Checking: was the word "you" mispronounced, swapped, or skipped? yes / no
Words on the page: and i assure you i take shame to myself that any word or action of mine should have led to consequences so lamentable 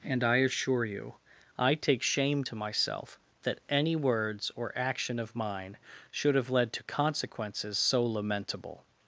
no